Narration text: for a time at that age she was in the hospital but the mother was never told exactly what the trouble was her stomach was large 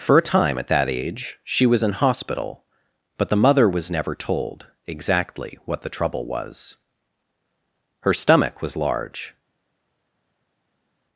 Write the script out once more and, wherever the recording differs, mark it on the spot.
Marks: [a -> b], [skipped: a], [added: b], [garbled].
for a time at that age she was in [skipped: the] hospital but the mother was never told exactly what the trouble was her stomach was large